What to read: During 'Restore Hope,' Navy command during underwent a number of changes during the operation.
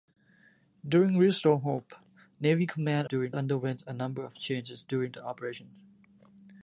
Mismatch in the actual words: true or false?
false